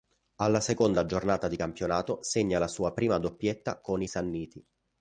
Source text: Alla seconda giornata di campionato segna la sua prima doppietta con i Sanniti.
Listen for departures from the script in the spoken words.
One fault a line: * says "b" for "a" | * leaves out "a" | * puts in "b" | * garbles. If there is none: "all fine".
all fine